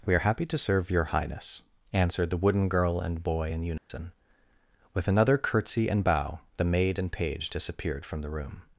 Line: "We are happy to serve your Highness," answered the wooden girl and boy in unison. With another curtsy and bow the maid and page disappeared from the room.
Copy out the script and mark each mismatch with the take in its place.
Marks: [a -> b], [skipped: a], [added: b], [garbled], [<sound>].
"We are happy to serve your Highness," answered the wooden girl and boy in unison. [dropout] With another curtsy and bow the maid and page disappeared from the room.